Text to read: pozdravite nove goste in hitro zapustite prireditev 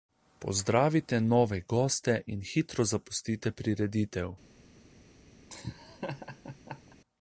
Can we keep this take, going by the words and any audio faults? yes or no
no